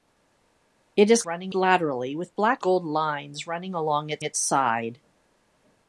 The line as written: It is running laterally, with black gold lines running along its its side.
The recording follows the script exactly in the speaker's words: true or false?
true